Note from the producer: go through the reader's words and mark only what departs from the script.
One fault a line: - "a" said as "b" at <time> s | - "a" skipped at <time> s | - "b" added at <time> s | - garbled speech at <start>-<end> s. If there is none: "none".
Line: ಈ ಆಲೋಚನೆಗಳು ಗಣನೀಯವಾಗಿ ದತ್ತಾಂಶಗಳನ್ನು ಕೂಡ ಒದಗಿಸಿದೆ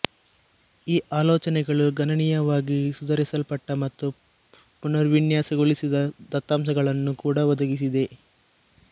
- "ಸುಧಾರಿಸಲ್ಪಟ್ಟ ಮತ್ತು ಪುನರ್ವಿನ್ಯಾಸಗೊಳಿಸಿದ" added at 2.9 s